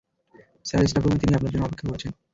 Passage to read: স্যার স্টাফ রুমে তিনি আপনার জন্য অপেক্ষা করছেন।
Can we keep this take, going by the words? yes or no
yes